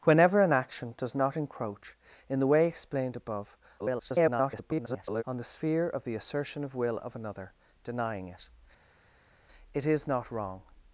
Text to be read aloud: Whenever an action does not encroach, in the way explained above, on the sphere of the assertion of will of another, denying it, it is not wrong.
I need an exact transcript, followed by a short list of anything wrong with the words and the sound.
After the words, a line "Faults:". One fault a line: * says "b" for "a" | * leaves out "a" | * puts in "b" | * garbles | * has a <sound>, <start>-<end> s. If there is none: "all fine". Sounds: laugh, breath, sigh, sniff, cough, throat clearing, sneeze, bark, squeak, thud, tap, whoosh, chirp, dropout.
Whenever an action does not encroach, in the way explained above, [garbled] on the sphere of the assertion of will of another, denying it, it is not wrong.
Faults:
* garbles